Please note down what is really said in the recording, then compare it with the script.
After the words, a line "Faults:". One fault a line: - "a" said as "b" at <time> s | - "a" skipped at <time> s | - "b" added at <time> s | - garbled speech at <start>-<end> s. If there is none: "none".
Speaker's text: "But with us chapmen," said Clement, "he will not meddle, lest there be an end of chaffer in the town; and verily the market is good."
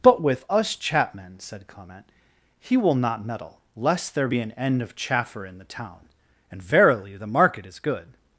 "But with us chapmen," said Clement, "he will not meddle, lest there be an end of chaffer in the town; and verily the market is good."
Faults:
none